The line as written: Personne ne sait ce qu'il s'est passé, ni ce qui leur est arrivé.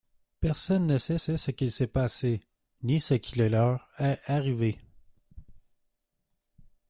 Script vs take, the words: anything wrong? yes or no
yes